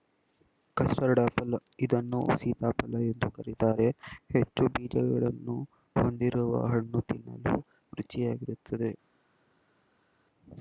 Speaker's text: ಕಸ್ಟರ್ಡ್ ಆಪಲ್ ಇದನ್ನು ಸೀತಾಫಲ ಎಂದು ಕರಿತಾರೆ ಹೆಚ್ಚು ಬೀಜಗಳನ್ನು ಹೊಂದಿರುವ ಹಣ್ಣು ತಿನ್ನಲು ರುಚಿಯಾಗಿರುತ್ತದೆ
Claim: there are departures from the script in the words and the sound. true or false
false